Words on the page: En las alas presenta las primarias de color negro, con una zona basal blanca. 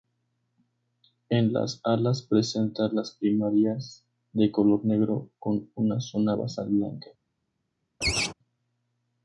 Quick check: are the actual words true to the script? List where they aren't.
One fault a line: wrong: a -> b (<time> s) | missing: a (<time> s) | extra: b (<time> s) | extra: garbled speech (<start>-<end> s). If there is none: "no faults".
no faults